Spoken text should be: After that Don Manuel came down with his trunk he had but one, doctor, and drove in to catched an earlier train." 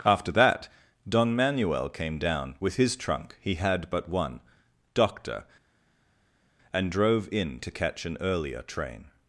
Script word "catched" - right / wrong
wrong